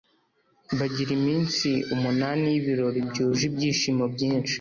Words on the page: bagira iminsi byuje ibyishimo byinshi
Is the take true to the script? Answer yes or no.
no